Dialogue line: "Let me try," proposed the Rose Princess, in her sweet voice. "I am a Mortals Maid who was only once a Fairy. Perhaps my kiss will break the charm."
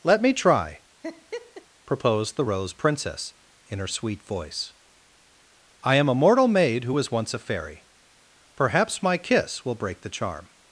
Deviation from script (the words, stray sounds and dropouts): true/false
true